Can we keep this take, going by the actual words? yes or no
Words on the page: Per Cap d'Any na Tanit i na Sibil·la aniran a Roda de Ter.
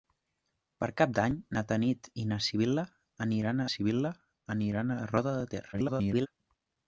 no